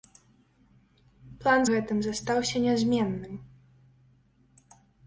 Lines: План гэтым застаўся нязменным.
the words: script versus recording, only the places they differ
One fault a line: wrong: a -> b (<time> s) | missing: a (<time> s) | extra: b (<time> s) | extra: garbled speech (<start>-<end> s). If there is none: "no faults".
no faults